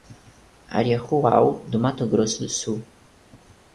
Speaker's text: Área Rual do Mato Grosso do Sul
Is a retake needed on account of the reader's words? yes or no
no